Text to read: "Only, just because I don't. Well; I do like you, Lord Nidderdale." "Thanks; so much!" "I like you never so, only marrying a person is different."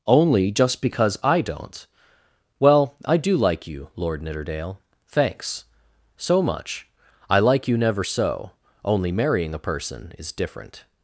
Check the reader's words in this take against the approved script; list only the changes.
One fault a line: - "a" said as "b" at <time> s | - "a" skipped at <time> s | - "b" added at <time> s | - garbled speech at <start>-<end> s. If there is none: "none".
none